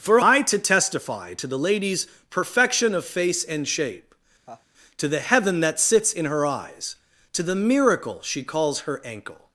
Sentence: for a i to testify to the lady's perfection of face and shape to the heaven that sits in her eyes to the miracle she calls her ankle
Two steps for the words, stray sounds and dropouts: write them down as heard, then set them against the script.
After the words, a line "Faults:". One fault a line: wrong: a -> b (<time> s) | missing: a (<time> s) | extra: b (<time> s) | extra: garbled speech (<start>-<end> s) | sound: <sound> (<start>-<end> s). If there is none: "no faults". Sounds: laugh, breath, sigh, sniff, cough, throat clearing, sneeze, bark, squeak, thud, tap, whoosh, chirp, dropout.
for a i to testify to the lady's perfection of face and shape to the heaven that sits in her eyes to the miracle she calls her ankle
Faults:
sound: laugh (4.5-4.7 s)